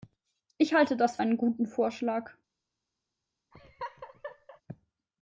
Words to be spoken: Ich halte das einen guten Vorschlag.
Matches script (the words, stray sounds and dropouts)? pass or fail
fail